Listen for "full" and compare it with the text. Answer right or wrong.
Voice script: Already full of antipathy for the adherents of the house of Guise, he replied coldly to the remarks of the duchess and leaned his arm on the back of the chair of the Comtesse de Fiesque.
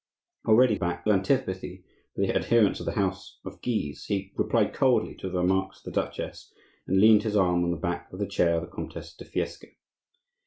wrong